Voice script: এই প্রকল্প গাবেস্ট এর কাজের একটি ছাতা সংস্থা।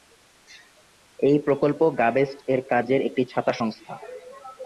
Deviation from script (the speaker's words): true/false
false